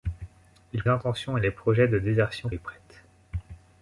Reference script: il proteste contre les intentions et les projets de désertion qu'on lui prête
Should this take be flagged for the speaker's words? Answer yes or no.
yes